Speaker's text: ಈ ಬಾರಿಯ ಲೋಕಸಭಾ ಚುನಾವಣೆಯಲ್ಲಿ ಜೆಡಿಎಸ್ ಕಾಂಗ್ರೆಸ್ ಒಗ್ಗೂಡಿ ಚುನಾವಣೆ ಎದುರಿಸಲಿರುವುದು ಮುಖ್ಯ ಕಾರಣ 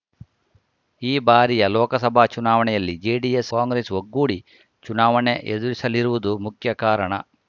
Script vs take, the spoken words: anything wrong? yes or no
no